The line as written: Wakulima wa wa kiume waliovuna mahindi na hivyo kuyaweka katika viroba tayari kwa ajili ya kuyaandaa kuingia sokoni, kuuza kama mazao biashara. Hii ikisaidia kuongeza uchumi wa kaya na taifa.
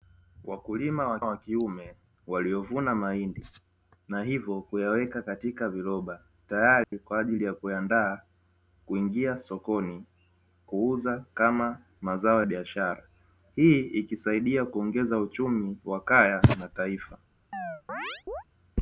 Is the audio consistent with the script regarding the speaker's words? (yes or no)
yes